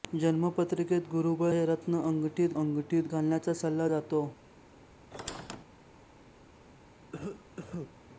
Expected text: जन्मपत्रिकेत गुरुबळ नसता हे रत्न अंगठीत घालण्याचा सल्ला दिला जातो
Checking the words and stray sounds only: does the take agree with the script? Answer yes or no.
no